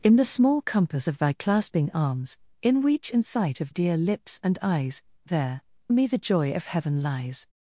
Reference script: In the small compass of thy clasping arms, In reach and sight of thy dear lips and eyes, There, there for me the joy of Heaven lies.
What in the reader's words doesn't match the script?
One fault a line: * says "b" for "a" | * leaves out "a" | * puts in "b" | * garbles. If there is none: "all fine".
* leaves out "thy"
* leaves out "there for"